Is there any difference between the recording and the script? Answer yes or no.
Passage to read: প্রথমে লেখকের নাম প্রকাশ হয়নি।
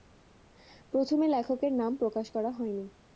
yes